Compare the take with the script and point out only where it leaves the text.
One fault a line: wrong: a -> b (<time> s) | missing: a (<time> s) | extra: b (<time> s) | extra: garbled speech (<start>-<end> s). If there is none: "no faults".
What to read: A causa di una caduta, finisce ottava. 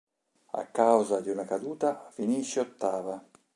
no faults